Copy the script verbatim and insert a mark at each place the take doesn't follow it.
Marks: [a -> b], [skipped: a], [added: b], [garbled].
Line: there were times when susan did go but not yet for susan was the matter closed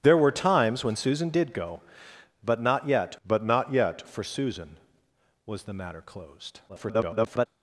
there were times when susan did go but not yet [added: but not yet] for susan was the matter closed [garbled]